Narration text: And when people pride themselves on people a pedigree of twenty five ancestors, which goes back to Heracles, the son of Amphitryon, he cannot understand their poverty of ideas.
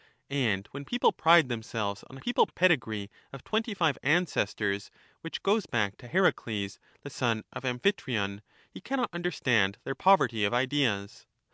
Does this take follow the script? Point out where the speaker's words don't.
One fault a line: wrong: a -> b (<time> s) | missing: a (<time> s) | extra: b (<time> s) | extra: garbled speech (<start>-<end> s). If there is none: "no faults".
no faults